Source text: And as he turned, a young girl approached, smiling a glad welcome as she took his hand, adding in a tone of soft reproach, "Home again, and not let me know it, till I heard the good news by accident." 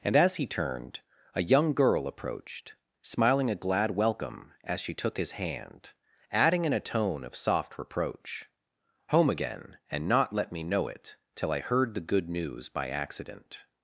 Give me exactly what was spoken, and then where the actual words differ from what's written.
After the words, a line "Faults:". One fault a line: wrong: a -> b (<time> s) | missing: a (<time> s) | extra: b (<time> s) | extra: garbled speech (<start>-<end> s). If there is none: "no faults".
And as he turned, a young girl approached, smiling a glad welcome as she took his hand, adding in a tone of soft reproach, "Home again, and not let me know it, till I heard the good news by accident."
Faults:
no faults